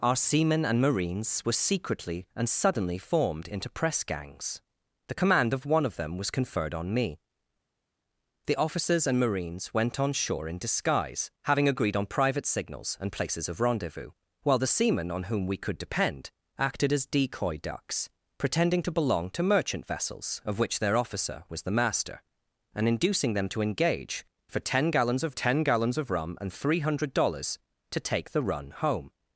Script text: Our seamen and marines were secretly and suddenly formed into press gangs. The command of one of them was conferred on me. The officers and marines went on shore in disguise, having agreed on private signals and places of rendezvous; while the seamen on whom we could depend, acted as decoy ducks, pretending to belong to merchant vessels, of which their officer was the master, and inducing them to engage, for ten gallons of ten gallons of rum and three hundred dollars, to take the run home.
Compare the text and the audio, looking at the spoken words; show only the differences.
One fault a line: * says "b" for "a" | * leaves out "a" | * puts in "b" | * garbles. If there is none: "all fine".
all fine